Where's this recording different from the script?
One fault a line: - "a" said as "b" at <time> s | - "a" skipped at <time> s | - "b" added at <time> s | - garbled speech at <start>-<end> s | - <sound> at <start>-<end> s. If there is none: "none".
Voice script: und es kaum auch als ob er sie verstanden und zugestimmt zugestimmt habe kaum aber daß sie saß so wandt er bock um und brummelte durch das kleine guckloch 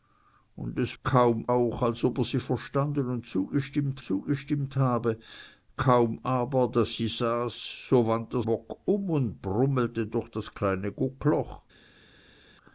none